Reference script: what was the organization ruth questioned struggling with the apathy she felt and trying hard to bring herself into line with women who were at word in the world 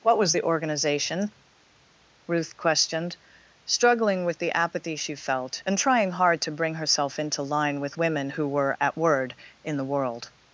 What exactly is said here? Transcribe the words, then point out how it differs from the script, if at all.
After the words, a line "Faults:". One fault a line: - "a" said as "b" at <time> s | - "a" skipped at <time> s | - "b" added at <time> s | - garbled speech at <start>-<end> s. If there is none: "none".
what was the organization ruth questioned struggling with the apathy she felt and trying hard to bring herself into line with women who were at word in the world
Faults:
none